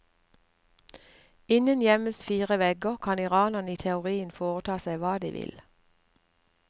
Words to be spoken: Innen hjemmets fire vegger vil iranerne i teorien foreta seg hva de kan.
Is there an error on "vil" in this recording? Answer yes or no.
yes